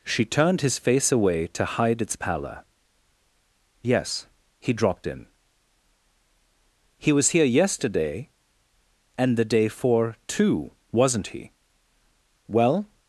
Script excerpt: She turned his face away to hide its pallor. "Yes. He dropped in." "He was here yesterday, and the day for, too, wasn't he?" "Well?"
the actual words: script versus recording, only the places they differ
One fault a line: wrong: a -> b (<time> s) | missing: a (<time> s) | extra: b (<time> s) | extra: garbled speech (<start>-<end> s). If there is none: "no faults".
no faults